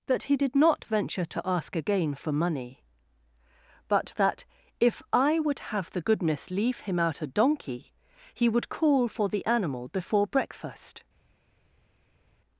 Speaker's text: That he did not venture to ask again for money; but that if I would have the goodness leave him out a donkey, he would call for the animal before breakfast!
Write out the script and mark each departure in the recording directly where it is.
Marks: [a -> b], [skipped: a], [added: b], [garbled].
That he did not venture to ask again for money; but that if I would have the goodness leave him out a donkey, he would call for the animal before breakfast!